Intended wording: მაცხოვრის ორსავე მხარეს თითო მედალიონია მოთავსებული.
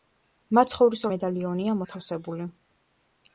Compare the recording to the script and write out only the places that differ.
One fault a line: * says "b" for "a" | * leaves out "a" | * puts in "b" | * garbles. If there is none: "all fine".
* leaves out "ორსავე მხარეს თითო"